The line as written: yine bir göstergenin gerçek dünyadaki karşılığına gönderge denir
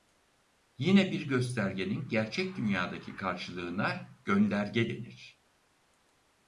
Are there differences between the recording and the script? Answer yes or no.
no